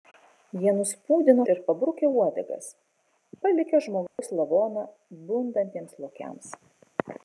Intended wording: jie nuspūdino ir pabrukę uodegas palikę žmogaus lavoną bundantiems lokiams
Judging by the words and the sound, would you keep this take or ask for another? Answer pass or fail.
fail